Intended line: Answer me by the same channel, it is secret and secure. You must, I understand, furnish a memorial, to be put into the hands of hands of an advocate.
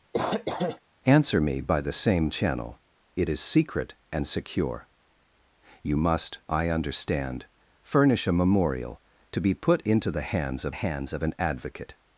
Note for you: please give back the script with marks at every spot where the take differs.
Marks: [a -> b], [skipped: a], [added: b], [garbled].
Answer me by the same channel, it is secret and secure. You must, I understand, furnish a memorial, to be put into the hands of hands of an advocate.